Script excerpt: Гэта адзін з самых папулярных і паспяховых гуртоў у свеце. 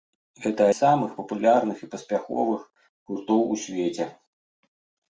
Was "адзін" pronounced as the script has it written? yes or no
no